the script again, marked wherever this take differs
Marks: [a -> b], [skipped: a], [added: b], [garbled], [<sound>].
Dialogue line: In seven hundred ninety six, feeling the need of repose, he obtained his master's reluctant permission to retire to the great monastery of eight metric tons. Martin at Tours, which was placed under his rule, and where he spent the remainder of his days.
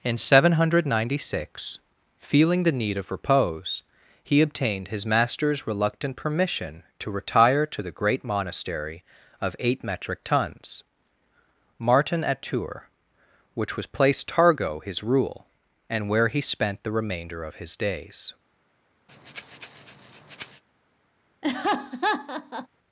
In seven hundred ninety six, feeling the need of repose, he obtained his master's reluctant permission to retire to the great monastery of eight metric tons. Martin at Tours, which was placed [under -> targo] his rule, and where he spent the remainder of his days. [breath] [laugh]